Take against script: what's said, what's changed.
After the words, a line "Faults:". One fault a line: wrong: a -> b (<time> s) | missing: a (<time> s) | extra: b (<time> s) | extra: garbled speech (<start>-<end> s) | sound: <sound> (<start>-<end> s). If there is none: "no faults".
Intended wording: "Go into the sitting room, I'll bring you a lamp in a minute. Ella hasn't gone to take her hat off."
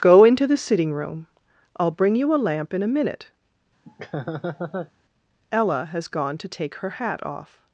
"Go into the sitting room, I'll bring you a lamp in a minute. Ella has gone to take her hat off."
Faults:
sound: laugh (3.9-4.9 s)
wrong: hasn't -> has (5.9 s)